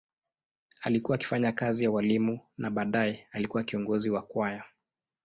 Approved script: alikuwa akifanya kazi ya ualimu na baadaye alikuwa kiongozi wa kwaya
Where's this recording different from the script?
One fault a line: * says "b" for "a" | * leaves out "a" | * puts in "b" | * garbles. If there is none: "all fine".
all fine